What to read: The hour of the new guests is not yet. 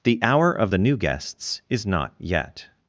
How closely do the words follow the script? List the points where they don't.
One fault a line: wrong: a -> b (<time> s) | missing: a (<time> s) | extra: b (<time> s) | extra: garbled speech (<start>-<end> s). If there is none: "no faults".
no faults